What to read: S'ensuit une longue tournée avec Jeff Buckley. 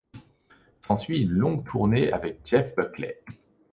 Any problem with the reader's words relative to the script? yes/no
no